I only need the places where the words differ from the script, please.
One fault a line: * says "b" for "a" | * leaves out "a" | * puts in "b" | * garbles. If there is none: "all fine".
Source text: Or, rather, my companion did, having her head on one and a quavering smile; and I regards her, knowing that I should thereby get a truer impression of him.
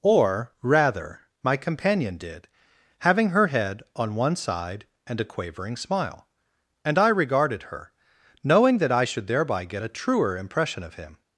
* puts in "side"
* says "regarded" for "regards"